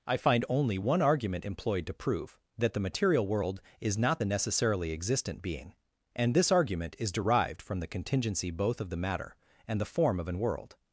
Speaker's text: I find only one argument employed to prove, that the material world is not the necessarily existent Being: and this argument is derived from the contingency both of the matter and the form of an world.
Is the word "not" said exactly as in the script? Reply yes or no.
yes